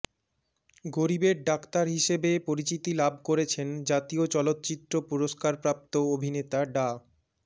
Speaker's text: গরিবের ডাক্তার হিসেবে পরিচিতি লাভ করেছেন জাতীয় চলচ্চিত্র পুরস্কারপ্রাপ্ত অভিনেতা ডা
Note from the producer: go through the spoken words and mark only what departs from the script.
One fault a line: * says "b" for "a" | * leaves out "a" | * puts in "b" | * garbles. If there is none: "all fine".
all fine